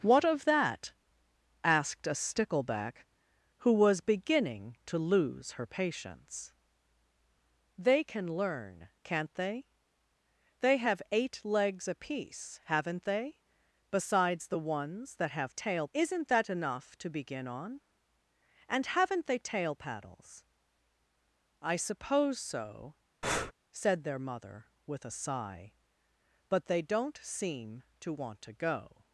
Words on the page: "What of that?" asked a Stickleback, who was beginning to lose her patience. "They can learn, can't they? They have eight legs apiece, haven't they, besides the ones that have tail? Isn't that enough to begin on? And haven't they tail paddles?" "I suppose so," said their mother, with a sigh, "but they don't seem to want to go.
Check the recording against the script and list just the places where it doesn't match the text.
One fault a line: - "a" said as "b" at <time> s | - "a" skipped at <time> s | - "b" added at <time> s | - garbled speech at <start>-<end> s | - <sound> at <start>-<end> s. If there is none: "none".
- breath at 23.2-23.5 s